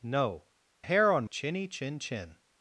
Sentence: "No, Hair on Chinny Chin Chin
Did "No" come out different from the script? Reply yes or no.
no